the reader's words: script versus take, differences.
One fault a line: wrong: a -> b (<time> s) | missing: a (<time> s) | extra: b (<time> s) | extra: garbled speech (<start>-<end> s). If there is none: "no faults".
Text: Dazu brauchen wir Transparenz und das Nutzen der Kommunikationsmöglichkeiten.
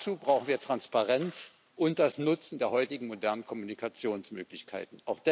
extra: heutigen modernen (2.7 s)